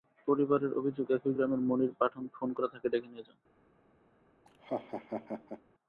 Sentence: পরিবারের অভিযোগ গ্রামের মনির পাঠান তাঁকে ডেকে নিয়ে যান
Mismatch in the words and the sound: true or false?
true